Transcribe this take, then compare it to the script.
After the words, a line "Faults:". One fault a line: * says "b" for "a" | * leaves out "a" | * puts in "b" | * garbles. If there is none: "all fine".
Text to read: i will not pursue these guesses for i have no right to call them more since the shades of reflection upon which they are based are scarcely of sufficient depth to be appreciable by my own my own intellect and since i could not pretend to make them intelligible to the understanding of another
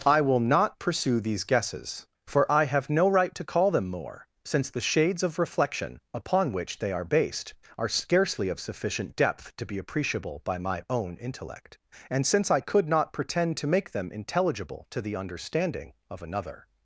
i will not pursue these guesses for i have no right to call them more since the shades of reflection upon which they are based are scarcely of sufficient depth to be appreciable by my own intellect and since i could not pretend to make them intelligible to the understanding of another
Faults:
* leaves out "my own"